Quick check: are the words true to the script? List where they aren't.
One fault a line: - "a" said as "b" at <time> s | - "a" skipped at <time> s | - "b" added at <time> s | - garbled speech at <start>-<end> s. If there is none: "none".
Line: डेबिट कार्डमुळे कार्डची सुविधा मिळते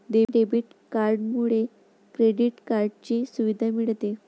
- "क्रेडिट" added at 2.1 s